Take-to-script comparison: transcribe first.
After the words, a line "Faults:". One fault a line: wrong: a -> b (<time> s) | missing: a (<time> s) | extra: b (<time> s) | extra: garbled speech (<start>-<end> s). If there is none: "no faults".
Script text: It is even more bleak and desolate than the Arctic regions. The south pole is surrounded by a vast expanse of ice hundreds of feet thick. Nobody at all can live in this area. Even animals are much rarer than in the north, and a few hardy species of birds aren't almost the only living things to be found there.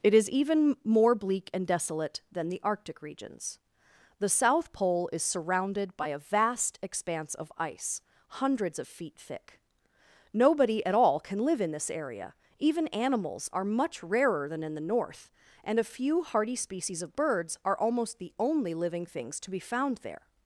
It is even more bleak and desolate than the Arctic regions. The south pole is surrounded by a vast expanse of ice hundreds of feet thick. Nobody at all can live in this area. Even animals are much rarer than in the north, and a few hardy species of birds are almost the only living things to be found there.
Faults:
wrong: aren't -> are (17.6 s)